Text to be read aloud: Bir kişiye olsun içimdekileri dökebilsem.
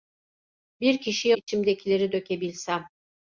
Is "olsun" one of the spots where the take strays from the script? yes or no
yes